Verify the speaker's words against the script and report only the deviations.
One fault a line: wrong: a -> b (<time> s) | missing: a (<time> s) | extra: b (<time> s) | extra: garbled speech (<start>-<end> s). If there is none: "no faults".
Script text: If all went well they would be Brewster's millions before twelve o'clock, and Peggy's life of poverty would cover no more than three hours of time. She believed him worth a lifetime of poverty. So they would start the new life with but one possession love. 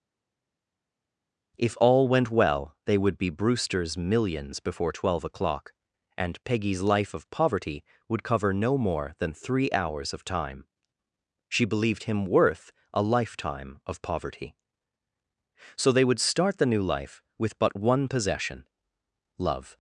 no faults